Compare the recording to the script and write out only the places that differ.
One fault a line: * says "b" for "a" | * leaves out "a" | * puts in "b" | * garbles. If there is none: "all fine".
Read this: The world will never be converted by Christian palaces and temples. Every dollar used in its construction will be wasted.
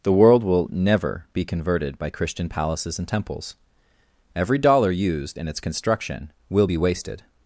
all fine